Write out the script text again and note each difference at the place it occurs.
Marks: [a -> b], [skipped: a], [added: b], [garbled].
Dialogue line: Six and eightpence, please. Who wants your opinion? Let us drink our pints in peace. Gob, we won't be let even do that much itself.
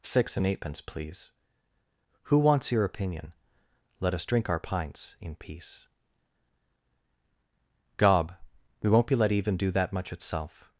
Six and eightpence, please. Who wants your opinion? Let us drink our pints in peace. Gob, we won't be let even do that much itself.